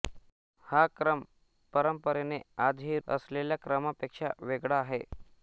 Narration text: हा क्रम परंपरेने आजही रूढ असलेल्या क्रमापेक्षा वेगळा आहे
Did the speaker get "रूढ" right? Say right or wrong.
wrong